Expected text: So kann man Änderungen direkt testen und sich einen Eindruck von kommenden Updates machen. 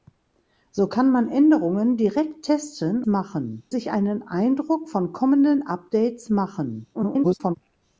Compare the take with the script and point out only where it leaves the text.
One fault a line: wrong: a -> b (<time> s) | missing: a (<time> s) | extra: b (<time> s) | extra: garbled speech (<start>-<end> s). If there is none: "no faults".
wrong: und -> machen (3.1 s)
extra: garbled speech (6.9-7.6 s)